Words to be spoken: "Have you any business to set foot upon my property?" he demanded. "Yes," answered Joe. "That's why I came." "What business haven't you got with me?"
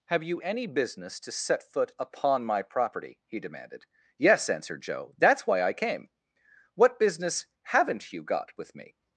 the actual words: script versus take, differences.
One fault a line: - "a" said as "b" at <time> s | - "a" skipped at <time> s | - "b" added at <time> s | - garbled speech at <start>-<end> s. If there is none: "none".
none